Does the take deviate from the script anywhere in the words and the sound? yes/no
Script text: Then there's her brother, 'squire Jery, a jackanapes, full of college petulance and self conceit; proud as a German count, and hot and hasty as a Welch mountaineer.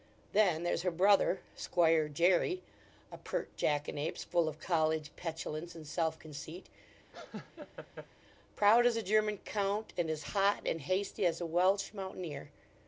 yes